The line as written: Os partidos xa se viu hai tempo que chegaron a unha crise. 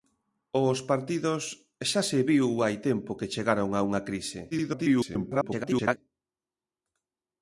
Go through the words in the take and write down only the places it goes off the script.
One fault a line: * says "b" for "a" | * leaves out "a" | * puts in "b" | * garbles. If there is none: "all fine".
* garbles